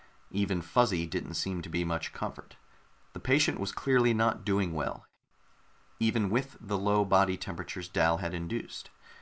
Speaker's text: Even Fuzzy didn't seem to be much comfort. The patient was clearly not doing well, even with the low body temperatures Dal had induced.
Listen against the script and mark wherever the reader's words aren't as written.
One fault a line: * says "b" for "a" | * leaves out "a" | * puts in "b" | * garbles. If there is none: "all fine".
all fine